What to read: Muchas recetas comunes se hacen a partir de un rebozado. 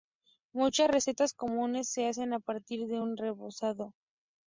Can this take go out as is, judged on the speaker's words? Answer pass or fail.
pass